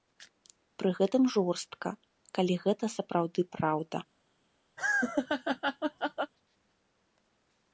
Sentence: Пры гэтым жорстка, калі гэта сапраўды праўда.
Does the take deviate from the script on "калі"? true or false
false